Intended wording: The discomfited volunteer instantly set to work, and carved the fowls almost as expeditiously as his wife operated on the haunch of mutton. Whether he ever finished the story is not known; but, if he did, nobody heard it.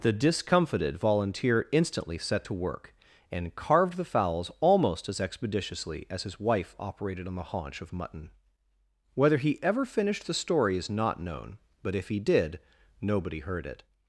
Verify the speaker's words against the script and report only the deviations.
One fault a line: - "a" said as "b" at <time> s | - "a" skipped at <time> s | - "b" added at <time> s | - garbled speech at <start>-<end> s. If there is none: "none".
none